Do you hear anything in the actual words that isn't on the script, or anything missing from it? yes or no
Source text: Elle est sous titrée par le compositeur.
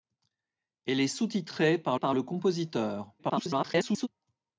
yes